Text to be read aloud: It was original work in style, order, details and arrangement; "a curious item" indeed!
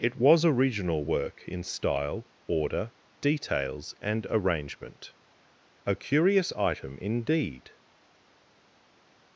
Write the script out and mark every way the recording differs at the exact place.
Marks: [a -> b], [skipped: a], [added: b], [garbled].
It was original work in style, order, details and arrangement; "a curious item" indeed!